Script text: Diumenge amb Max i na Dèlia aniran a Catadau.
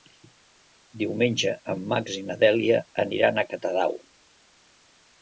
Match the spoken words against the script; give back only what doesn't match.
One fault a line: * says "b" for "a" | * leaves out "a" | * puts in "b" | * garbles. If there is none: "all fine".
* says "en" for "amb"